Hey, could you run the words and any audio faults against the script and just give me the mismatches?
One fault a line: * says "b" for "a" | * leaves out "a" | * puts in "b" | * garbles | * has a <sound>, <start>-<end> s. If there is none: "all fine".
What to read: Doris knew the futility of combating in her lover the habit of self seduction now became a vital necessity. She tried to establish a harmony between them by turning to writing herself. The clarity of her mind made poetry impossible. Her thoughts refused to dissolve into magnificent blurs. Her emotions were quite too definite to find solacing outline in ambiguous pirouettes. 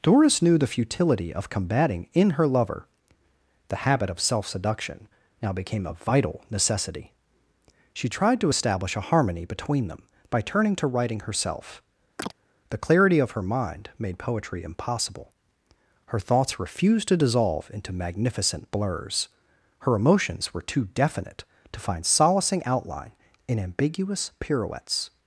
* has a chirp, 12.2-12.3 s
* leaves out "quite"